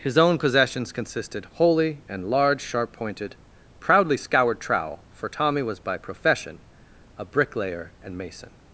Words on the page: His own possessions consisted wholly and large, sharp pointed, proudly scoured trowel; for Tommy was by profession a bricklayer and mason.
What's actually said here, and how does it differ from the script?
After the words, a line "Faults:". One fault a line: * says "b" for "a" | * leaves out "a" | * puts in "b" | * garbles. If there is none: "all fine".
His own possessions consisted wholly and large, sharp pointed, proudly scoured trowel; for Tommy was by profession a bricklayer and mason.
Faults:
all fine